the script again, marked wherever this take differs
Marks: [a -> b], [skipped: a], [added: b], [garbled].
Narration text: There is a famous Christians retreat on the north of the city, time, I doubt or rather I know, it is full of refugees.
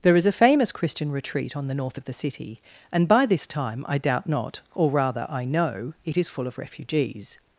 There is a famous [Christians -> Christian] retreat on the north of the city, [added: and by this] time, I doubt [added: not] or rather I know, it is full of refugees.